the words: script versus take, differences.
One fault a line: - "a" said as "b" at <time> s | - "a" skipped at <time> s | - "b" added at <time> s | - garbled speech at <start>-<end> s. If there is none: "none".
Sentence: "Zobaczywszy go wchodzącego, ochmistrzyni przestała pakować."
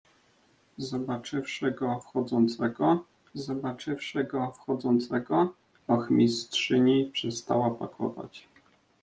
- "zobaczywszy go wchodzącego" added at 3.3 s